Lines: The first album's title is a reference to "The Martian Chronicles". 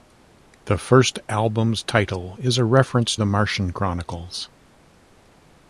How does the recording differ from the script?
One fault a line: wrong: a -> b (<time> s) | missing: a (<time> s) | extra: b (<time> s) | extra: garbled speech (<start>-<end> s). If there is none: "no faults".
missing: to (3.1 s)